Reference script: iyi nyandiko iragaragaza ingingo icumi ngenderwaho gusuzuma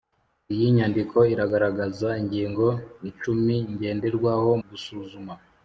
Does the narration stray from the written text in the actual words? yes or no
no